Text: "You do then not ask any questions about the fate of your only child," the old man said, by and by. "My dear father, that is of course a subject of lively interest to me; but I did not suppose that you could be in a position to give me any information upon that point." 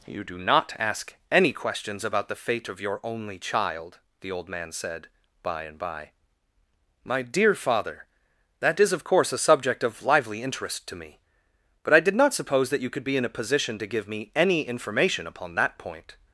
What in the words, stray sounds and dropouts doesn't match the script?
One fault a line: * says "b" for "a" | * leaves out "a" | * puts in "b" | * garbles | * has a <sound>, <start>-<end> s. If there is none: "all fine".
* leaves out "then"